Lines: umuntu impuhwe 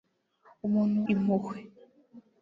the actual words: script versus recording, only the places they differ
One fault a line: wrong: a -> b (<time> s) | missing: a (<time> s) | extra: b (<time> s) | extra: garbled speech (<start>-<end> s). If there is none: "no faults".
no faults